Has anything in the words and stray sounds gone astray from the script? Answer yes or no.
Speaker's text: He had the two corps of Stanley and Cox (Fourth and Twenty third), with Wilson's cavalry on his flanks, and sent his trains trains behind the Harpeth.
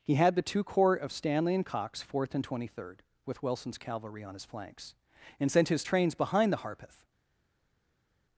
yes